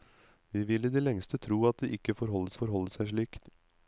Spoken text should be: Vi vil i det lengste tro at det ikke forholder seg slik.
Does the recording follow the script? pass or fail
fail